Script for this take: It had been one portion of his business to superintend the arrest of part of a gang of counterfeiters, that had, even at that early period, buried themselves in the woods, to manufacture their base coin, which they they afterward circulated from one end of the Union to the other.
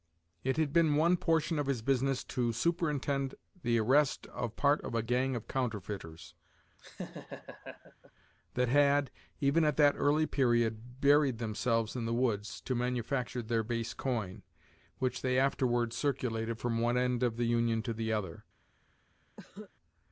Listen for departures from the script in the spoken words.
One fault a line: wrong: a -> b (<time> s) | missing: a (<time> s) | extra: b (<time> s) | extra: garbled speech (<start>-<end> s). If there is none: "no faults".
missing: they (15.4 s)